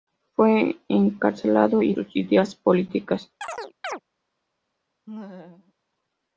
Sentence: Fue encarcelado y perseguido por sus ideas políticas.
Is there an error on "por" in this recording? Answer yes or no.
yes